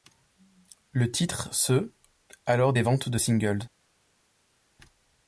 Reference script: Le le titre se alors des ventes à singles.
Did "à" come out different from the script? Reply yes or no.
yes